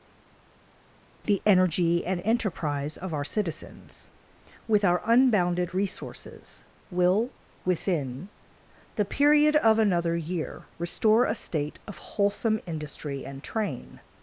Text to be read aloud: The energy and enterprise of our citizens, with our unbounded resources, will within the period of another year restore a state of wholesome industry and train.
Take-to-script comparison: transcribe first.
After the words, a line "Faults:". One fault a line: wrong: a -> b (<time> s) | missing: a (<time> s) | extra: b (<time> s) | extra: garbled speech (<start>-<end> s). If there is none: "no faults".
The energy and enterprise of our citizens, with our unbounded resources, will within the period of another year restore a state of wholesome industry and train.
Faults:
no faults